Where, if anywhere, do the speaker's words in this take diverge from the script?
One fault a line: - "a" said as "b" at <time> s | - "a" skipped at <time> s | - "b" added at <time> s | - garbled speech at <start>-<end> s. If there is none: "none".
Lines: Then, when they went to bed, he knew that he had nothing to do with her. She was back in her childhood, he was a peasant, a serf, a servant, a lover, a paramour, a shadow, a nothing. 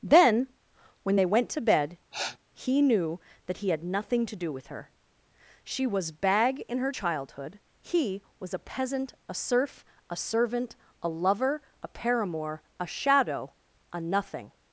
- "back" said as "bag" at 6.1 s